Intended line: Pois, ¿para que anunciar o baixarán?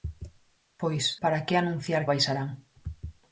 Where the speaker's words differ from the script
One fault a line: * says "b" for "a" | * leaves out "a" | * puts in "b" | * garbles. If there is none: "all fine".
all fine